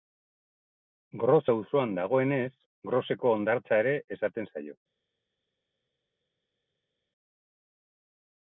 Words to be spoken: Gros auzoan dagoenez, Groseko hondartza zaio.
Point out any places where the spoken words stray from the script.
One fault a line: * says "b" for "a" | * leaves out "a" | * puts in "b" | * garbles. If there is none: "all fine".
* puts in "ere esaten"